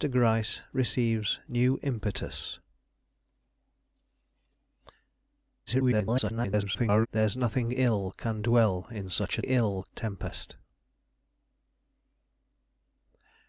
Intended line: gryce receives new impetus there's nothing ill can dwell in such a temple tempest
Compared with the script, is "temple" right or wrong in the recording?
wrong